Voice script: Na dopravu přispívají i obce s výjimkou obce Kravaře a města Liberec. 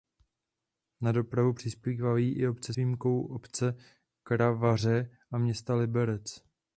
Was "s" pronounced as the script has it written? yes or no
no